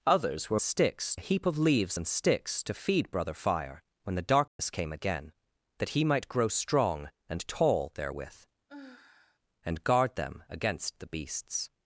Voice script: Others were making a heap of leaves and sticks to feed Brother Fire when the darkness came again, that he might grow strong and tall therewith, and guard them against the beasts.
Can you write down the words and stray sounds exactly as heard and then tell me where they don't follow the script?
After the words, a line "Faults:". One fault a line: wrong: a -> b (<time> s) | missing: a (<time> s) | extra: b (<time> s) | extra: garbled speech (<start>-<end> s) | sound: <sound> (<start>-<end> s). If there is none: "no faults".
Others were sticks a heap of leaves and sticks to feed Brother Fire when the darkness came again, that he might grow strong and tall therewith, and guard them against the beasts.
Faults:
wrong: making -> sticks (0.6 s)
sound: dropout (4.5-4.6 s)
sound: sigh (8.7-9.4 s)